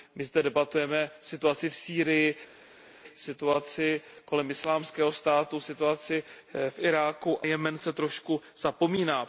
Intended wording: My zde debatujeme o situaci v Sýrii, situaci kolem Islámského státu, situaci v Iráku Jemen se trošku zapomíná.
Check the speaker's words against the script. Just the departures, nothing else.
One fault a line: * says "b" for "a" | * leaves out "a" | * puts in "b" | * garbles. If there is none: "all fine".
all fine